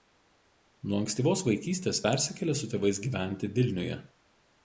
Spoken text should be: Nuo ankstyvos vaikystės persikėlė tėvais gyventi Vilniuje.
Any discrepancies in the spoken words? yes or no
yes